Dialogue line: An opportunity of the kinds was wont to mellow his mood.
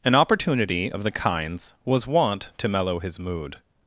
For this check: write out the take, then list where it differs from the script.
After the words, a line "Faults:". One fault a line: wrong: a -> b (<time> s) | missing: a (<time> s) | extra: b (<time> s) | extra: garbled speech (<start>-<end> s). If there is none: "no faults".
An opportunity of the kinds was wont to mellow his mood.
Faults:
no faults